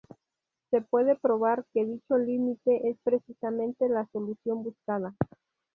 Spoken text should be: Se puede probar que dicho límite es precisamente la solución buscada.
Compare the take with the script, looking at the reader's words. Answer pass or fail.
pass